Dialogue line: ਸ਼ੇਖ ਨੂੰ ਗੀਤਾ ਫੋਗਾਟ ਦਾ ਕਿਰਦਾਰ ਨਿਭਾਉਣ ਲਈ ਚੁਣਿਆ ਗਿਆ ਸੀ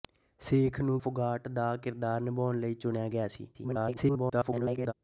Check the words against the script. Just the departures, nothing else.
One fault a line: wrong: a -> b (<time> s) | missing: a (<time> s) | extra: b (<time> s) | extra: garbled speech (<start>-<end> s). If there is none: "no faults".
missing: ਗੀਤਾ (1.0 s)
extra: garbled speech (3.5-4.9 s)